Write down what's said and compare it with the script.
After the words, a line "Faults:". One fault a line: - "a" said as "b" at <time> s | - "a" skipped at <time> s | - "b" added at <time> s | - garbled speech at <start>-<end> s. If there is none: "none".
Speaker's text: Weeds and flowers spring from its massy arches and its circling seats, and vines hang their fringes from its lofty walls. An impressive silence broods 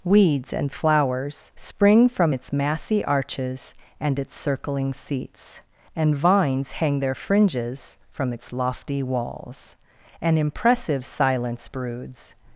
Weeds and flowers spring from its massy arches and its circling seats, and vines hang their fringes from its lofty walls. An impressive silence broods
Faults:
none